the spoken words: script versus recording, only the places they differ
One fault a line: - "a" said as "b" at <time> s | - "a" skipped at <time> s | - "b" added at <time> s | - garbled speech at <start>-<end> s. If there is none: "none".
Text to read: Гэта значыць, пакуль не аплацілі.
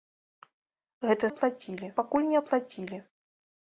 - "значыць" said as "аплацілі" at 1.3 s